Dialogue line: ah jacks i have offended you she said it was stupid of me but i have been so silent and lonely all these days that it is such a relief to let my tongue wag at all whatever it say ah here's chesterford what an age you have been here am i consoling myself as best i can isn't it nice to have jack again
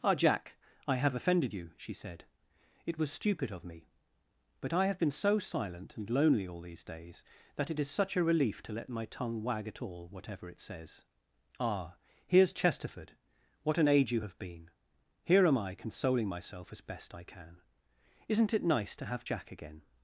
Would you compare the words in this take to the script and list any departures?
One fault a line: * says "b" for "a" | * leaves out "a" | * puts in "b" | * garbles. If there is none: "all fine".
* says "jack" for "jacks"
* says "says" for "say"